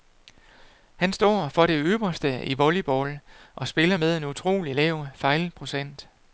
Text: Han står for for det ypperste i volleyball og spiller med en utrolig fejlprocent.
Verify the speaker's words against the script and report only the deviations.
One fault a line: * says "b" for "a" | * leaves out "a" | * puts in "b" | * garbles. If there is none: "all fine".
* leaves out "for"
* puts in "lav"